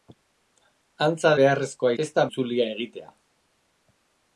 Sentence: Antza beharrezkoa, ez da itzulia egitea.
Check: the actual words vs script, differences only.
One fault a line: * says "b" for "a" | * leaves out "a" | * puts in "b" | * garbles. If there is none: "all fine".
all fine